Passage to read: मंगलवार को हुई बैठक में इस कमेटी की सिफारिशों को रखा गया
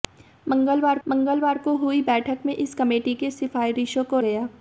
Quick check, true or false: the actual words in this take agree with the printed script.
false